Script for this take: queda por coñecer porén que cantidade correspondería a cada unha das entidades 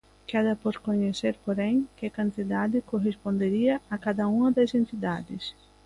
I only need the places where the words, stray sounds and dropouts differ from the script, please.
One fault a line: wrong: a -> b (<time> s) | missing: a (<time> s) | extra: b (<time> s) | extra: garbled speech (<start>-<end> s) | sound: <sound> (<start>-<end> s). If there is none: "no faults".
no faults